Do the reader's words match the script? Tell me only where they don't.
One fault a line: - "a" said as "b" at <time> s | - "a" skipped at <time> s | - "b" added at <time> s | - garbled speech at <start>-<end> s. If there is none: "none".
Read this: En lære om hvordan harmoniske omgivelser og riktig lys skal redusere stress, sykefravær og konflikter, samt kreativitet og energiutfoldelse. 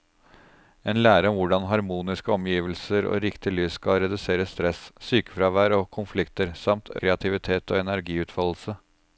none